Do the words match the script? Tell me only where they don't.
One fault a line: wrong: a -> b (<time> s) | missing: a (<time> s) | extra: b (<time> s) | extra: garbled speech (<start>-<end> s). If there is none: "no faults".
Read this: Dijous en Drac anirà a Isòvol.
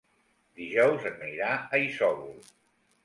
missing: Drac (1.2 s)